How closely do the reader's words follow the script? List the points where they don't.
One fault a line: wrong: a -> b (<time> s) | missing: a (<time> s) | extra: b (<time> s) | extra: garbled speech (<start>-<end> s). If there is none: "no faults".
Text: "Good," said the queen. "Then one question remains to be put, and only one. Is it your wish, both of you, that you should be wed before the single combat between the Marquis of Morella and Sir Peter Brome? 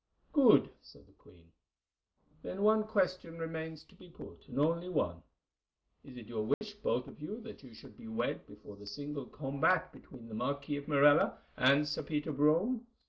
no faults